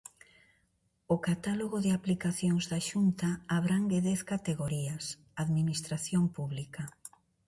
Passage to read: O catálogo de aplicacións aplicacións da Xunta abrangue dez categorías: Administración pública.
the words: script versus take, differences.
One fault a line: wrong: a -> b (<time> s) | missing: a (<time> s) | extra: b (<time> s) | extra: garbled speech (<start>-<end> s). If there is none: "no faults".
missing: aplicacións (2.6 s)